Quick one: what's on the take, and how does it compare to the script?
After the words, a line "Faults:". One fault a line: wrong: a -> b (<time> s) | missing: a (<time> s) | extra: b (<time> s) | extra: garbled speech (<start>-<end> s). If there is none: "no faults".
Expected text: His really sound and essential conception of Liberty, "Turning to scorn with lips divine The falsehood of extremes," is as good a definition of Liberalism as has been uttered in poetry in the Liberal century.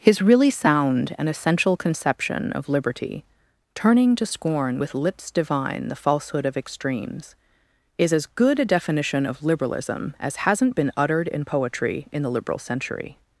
His really sound and essential conception of Liberty, "Turning to scorn with lips divine The falsehood of extremes," is as good a definition of Liberalism as hasn't been uttered in poetry in the Liberal century.
Faults:
wrong: has -> hasn't (10.4 s)